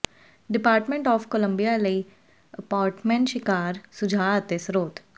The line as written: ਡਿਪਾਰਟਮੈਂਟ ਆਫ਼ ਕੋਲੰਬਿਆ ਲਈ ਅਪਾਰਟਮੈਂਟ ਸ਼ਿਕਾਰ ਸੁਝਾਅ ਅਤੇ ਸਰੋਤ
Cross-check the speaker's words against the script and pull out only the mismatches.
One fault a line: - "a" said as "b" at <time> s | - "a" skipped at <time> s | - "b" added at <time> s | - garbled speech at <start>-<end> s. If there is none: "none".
none